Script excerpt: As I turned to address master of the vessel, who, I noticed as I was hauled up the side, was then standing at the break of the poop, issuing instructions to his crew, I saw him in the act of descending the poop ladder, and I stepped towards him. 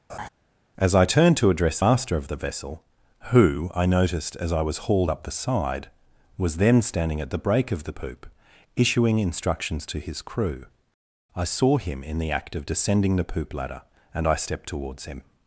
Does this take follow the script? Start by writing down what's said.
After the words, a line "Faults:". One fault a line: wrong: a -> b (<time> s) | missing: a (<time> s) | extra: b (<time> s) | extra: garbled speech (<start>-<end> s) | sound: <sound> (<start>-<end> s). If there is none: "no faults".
As I turned to address master of the vessel, who, I noticed as I was hauled up the side, was then standing at the break of the poop, issuing instructions to his crew, I saw him in the act of descending the poop ladder, and I stepped towards him.
Faults:
sound: laugh (0.1-0.3 s)